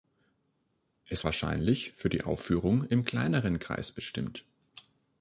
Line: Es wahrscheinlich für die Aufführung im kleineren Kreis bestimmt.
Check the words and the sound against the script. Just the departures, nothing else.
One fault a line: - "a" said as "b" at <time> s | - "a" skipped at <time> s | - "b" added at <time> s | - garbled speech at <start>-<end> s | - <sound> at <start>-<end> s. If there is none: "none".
none